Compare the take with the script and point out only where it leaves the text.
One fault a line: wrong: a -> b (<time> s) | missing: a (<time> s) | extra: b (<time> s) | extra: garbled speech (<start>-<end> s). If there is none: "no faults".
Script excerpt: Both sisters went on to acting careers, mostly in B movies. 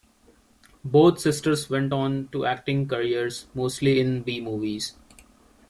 no faults